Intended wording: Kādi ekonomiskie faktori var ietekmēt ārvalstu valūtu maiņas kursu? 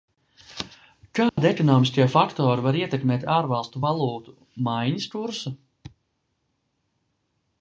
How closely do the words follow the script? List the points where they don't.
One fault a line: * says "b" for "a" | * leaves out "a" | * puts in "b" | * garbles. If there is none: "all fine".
all fine